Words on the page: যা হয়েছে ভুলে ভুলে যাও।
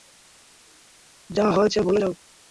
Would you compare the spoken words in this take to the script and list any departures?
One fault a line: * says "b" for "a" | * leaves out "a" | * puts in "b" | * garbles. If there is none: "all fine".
* leaves out "ভুলে"